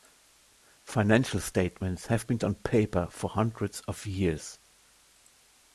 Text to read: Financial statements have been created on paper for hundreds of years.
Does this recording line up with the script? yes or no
no